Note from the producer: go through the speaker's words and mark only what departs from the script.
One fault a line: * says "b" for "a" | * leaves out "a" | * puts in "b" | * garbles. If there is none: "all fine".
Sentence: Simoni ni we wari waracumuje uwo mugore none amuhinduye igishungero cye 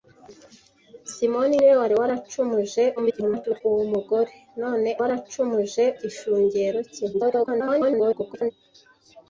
* garbles
* says "waracumuje" for "amuhinduye"
* garbles